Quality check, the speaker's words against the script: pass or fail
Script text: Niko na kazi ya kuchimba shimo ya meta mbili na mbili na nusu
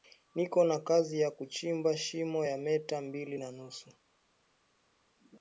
fail